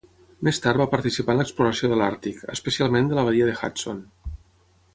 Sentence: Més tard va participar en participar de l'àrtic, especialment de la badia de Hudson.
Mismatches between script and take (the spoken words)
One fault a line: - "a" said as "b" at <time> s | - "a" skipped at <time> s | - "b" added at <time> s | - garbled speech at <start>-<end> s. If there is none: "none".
- "participar" said as "l'exploració" at 1.4 s